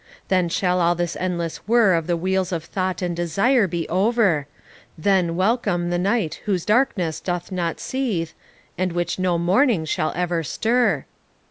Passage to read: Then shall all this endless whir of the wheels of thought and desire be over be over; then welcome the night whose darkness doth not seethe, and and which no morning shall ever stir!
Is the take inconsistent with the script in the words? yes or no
yes